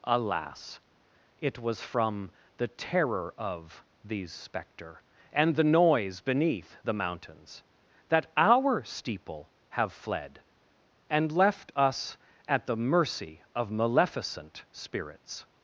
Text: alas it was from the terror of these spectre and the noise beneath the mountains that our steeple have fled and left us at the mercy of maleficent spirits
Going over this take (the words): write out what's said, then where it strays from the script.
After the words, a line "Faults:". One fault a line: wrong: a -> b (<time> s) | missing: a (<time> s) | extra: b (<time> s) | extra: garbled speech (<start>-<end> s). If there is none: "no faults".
alas it was from the terror of these spectre and the noise beneath the mountains that our steeple have fled and left us at the mercy of maleficent spirits
Faults:
no faults